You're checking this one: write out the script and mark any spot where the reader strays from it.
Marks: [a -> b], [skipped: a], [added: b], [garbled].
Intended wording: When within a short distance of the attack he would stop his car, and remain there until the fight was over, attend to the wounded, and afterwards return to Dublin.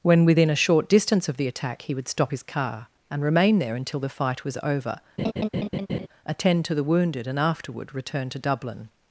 When within a short distance of the attack he would stop his car, and remain there until the fight was over, attend to the wounded, and [afterwards -> afterward] return to Dublin.